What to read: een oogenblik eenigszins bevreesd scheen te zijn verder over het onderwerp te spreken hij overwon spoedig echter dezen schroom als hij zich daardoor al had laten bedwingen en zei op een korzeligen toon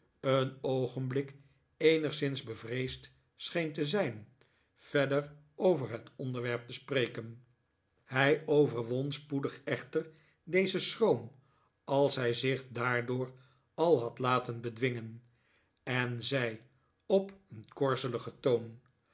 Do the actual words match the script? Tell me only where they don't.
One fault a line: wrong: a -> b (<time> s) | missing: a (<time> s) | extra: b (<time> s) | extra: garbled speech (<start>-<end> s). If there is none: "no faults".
no faults